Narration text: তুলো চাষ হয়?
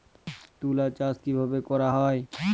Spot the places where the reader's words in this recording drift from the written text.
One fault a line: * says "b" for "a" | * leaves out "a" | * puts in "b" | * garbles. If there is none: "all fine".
* puts in "কিভাবে করা"